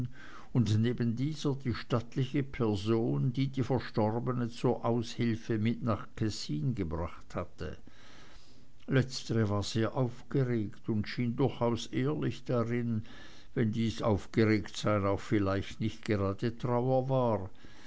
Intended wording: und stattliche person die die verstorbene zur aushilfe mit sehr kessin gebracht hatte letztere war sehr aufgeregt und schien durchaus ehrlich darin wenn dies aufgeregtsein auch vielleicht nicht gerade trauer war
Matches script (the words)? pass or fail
fail